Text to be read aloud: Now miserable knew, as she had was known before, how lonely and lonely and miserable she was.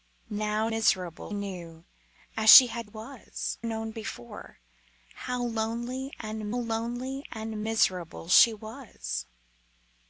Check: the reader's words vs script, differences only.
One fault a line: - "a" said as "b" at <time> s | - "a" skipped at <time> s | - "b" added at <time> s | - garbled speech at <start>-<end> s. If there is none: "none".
none